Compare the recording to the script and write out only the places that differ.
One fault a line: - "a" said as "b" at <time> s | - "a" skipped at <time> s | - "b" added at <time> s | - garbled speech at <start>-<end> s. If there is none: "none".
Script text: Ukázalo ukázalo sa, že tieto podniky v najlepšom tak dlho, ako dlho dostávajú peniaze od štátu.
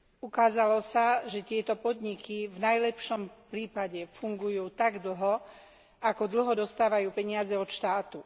- "ukázalo" skipped at 0.8 s
- "prípade fungujú" added at 3.5 s